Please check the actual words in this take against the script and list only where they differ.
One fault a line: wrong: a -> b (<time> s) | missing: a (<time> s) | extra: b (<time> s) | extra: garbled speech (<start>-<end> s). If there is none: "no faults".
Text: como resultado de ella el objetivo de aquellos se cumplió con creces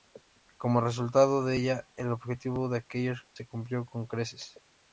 no faults